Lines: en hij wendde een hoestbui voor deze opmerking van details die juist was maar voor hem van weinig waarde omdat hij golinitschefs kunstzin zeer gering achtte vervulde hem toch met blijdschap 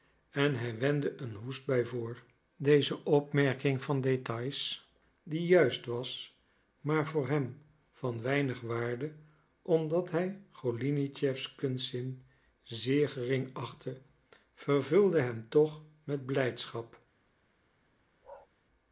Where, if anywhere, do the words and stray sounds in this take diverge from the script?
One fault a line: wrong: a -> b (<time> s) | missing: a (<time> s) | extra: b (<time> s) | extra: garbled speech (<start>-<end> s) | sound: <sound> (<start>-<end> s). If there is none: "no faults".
sound: bark (18.2-18.5 s)